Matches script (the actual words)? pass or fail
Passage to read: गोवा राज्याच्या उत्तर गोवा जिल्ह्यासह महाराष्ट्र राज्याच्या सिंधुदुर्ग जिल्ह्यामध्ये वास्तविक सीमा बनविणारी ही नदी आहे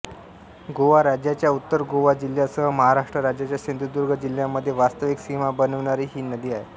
pass